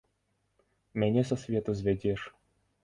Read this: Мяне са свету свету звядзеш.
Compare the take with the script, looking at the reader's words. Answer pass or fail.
fail